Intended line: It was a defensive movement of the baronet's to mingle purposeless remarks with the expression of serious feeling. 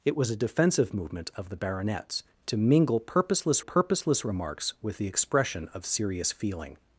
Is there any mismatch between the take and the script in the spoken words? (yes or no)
yes